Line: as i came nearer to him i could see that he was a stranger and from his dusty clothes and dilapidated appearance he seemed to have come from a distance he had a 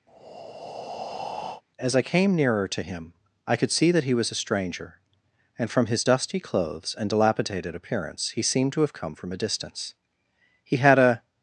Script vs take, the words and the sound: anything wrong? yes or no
yes